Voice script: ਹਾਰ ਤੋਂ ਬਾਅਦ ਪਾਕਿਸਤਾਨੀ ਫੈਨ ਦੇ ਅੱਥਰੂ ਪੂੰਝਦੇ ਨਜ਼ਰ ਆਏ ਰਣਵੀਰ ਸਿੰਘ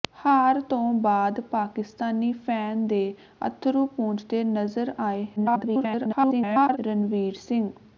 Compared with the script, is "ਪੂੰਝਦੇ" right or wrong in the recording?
right